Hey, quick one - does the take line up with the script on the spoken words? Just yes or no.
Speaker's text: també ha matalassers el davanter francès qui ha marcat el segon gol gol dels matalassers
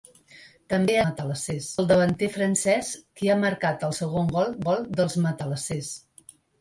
yes